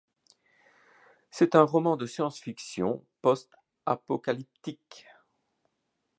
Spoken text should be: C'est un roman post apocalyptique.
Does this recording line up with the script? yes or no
no